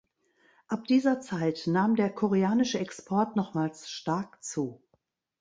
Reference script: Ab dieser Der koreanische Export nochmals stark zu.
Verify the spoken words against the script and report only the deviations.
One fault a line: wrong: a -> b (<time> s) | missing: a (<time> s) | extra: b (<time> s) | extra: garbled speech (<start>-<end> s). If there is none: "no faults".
extra: Zeit nahm (1.2 s)